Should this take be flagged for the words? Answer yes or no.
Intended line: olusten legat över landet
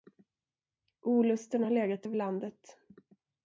yes